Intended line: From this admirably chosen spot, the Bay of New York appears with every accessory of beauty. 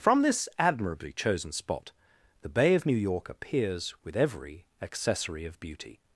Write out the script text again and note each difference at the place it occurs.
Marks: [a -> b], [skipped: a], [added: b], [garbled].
From this admirably chosen spot, the Bay of New York appears with every accessory of beauty.